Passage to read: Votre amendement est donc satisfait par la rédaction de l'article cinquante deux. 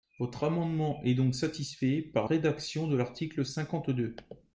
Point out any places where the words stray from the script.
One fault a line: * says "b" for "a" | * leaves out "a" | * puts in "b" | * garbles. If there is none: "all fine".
* leaves out "la"